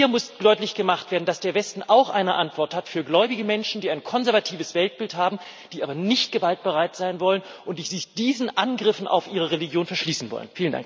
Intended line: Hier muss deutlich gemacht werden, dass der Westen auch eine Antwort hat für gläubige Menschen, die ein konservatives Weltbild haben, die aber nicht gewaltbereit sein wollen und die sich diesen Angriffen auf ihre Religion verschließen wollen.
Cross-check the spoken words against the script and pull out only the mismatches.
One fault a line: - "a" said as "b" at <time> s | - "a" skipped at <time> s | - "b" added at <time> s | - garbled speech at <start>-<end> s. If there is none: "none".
none